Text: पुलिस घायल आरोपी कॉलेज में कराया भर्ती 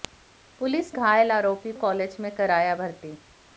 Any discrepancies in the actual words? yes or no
no